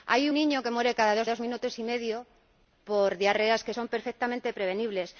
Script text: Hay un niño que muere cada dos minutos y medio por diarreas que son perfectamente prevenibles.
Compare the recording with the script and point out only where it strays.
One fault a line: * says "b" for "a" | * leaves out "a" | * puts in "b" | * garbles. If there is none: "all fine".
* leaves out "un"
* puts in "dos"